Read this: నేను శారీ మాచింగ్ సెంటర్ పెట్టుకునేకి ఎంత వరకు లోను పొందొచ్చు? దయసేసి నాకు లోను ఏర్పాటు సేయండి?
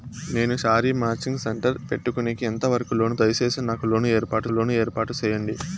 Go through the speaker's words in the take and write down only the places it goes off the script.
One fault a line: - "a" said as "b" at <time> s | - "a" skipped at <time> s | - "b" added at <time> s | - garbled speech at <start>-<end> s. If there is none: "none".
- "పొందొచ్చు" skipped at 3.2 s
- "లోను ఏర్పాటు" added at 4.5 s